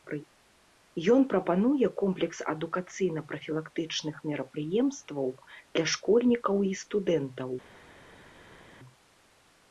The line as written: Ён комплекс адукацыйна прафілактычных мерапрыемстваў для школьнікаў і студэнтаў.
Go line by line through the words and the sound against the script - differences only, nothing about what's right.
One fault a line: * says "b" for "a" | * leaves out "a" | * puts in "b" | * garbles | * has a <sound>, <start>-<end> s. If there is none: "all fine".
* puts in "прапануе"